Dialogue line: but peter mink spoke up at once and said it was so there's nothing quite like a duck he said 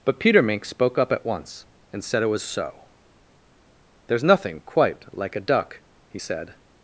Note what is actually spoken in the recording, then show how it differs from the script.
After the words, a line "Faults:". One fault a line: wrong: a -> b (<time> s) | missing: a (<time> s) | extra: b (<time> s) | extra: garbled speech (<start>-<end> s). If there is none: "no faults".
but peter mink spoke up at once and said it was so there's nothing quite like a duck he said
Faults:
no faults